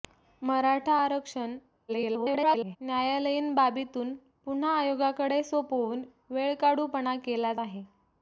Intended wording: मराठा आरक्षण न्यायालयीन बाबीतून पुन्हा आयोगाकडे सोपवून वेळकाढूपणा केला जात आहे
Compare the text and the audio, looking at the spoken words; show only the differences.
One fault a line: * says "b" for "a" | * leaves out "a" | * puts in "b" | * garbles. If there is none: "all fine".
* garbles
* leaves out "जात"